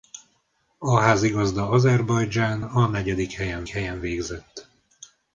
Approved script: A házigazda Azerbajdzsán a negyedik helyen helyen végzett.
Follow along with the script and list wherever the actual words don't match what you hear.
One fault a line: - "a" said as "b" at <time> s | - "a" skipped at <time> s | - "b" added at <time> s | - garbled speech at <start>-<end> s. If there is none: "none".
none